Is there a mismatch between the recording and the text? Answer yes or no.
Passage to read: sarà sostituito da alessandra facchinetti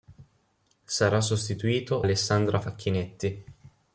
yes